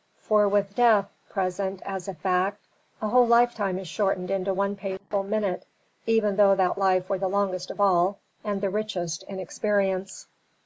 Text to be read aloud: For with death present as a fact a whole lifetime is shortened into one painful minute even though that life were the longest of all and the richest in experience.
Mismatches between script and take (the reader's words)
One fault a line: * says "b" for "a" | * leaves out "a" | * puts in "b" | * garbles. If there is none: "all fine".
all fine